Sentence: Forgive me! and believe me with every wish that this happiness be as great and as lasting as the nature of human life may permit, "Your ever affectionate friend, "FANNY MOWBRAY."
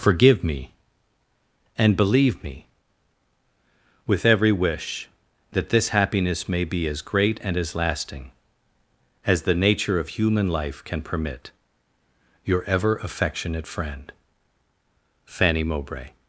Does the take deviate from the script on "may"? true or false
true